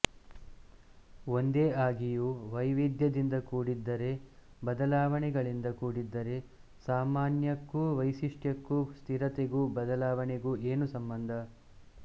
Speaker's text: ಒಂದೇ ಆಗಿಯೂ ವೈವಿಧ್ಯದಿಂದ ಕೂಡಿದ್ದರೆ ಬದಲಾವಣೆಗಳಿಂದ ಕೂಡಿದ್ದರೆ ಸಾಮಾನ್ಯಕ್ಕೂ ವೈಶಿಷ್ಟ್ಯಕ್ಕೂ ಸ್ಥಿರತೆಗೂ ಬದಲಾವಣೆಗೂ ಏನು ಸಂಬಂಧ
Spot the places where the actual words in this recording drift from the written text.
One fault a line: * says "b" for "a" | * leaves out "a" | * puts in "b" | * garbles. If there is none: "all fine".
all fine